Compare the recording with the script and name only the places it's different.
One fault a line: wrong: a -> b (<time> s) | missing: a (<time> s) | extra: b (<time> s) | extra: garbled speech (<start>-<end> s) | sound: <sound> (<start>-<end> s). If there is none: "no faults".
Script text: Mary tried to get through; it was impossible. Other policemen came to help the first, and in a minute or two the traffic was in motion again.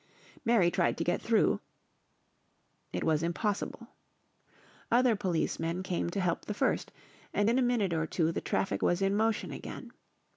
no faults